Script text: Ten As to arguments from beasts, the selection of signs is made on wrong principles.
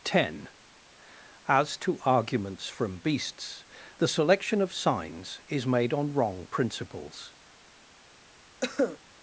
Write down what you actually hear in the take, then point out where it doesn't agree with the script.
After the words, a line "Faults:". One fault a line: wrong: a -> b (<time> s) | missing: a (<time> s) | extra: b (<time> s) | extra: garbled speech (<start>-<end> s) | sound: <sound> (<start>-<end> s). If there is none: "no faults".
Ten As to arguments from beasts, the selection of signs is made on wrong principles.
Faults:
sound: cough (8.6-9.0 s)